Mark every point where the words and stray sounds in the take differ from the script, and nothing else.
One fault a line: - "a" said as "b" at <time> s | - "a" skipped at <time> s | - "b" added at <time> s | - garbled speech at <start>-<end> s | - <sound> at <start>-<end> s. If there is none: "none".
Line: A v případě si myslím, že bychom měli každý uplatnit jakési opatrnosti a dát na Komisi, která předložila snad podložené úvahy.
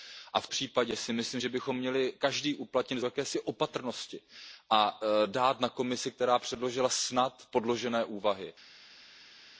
none